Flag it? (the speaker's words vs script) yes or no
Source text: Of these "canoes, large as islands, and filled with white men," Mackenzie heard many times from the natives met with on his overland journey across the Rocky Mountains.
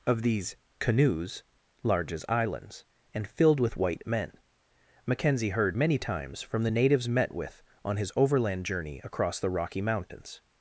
no